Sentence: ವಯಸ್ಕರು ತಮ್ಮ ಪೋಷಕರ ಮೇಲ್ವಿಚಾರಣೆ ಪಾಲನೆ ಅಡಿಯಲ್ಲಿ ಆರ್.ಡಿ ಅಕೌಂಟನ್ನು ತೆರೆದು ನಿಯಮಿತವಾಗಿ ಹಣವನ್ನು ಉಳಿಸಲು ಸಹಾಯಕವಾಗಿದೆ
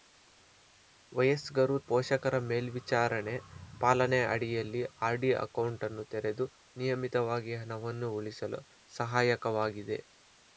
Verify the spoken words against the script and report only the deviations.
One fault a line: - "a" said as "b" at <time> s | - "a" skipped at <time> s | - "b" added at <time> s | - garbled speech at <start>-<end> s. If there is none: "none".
- "ತಮ್ಮ" skipped at 1.8 s